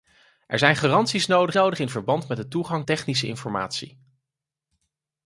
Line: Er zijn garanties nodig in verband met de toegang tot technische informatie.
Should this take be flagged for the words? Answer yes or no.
yes